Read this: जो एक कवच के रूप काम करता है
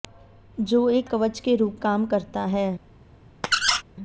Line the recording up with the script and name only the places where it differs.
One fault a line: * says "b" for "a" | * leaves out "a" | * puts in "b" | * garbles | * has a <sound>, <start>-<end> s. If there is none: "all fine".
* has a squeak, 3.4-3.8 s